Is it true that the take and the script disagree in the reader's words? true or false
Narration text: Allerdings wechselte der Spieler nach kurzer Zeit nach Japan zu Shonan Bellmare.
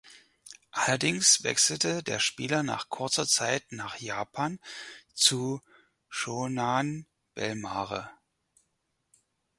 false